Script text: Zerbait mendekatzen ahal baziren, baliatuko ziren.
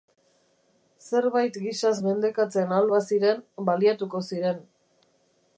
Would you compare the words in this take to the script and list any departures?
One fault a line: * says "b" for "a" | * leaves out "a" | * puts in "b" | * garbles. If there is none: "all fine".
* puts in "gisaz"